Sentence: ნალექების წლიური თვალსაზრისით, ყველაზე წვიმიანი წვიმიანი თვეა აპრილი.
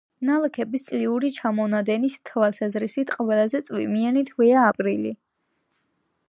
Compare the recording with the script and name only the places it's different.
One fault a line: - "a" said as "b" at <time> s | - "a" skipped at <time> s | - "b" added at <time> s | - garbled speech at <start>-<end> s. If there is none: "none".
- "ჩამონადენის" added at 1.4 s
- "წვიმიანი" skipped at 4.2 s